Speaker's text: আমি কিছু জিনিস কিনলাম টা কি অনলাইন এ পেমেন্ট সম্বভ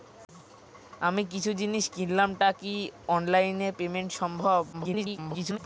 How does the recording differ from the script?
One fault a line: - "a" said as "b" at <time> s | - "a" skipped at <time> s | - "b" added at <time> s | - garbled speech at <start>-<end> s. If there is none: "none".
- garbled speech at 4.7-5.6 s